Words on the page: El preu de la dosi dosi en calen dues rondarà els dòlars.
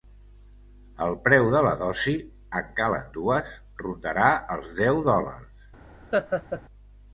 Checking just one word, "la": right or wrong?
right